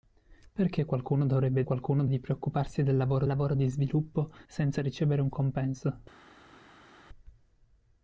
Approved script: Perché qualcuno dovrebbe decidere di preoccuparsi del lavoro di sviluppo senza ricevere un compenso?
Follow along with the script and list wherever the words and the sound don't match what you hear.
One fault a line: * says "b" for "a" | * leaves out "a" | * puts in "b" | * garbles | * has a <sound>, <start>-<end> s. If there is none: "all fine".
* says "qualcuno" for "decidere"
* puts in "lavoro"